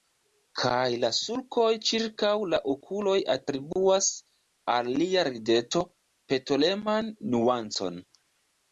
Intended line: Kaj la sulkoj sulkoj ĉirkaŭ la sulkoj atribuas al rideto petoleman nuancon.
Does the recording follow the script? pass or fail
fail